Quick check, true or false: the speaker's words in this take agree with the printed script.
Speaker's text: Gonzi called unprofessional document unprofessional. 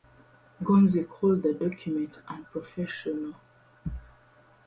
false